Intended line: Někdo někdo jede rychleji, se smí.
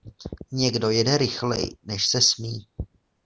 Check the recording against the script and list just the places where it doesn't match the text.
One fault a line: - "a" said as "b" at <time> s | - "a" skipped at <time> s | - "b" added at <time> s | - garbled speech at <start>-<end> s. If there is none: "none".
- "někdo" skipped at 0.9 s
- "než" added at 1.8 s